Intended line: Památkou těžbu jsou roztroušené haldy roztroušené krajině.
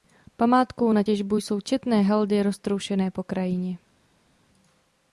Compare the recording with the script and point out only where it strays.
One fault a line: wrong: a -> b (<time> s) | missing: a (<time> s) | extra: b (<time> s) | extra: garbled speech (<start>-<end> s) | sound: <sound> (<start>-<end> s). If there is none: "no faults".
extra: na (0.9 s)
wrong: roztroušené -> četné (1.6 s)
extra: po (3.1 s)